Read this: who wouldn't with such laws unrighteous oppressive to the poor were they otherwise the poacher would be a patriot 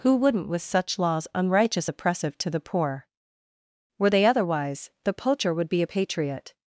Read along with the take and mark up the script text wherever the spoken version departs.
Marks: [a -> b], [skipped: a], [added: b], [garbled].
who wouldn't with such laws unrighteous oppressive to the poor were they otherwise the poacher would be a patriot